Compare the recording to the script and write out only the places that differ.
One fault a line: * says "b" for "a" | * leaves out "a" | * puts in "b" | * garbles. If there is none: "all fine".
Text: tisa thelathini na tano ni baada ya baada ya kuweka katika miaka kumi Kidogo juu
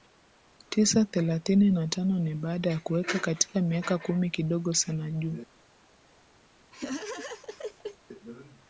* leaves out "baada ya"
* puts in "sana"